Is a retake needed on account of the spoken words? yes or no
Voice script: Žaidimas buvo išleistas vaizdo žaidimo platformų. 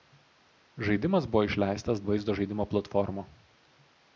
no